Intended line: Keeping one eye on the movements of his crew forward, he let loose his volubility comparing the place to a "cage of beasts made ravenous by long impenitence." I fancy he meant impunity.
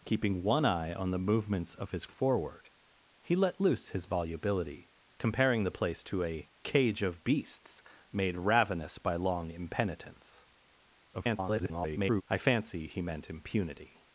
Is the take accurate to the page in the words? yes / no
no